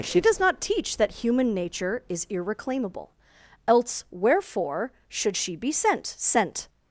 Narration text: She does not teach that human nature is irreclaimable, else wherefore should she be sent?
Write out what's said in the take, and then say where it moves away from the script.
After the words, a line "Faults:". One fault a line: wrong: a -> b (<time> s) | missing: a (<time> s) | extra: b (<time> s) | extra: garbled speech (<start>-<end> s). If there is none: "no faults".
She does not teach that human nature is irreclaimable, else wherefore should she be sent sent?
Faults:
extra: sent (6.2 s)